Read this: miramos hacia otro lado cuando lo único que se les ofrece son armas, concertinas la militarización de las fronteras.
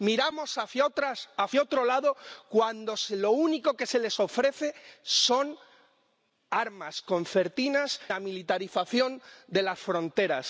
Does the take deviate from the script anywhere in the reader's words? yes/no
no